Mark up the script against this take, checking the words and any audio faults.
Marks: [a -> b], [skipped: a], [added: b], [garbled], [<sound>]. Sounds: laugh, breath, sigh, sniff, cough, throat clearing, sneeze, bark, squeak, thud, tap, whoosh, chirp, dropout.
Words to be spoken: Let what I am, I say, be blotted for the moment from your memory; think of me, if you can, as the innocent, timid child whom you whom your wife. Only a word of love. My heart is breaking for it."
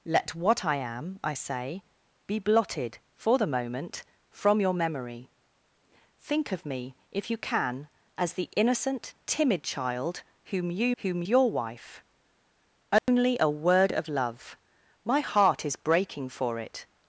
Let what I am, I say, be blotted for the moment from your memory; think of me, if you can, as the innocent, timid child whom you whom your wife. Only [dropout] a word of love. My heart is breaking for it."